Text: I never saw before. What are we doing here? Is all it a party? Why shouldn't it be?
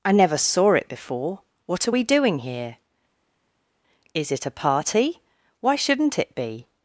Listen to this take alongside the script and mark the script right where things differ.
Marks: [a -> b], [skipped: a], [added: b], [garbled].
I never saw [added: it] before. What are we doing here? Is [skipped: all] it a party? Why shouldn't it be?